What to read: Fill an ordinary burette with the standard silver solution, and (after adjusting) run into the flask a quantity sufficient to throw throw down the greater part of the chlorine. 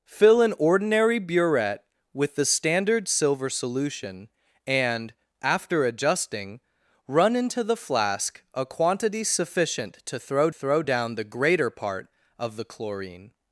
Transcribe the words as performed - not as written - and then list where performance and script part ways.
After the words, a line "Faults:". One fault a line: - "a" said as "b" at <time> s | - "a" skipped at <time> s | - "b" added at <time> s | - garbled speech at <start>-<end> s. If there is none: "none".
Fill an ordinary burette with the standard silver solution, and (after adjusting) run into the flask a quantity sufficient to throw throw down the greater part of the chlorine.
Faults:
none